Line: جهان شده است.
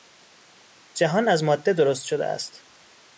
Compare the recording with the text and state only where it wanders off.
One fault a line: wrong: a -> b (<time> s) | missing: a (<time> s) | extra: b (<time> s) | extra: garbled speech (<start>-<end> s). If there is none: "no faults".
extra: از ماده درست (1.3 s)